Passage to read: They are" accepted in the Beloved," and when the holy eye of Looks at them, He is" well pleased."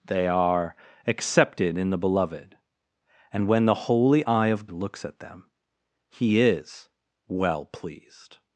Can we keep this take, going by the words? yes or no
yes